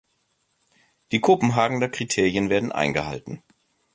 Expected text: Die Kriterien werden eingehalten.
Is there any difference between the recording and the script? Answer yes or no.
yes